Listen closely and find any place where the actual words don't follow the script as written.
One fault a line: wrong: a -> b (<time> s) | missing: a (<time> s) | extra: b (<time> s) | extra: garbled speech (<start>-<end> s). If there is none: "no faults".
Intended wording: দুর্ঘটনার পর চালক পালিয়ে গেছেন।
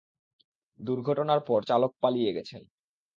no faults